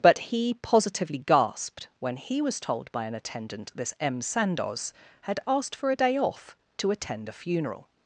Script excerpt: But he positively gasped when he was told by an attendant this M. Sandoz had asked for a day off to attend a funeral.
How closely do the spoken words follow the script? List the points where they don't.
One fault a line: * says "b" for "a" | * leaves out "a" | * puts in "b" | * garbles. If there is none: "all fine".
all fine